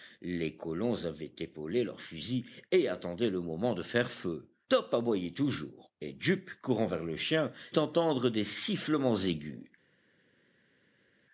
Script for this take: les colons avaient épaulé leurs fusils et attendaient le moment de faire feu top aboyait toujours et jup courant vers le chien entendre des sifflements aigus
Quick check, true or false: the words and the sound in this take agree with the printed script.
true